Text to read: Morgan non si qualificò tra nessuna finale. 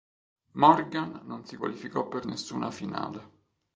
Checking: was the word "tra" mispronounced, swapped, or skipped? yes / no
yes